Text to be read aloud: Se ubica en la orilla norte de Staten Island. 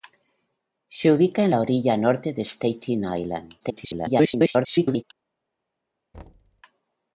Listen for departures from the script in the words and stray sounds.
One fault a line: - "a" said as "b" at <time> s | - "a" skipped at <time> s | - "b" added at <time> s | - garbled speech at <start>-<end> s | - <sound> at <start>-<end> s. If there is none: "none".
- garbled speech at 3.6-5.0 s
- thud at 6.1-6.6 s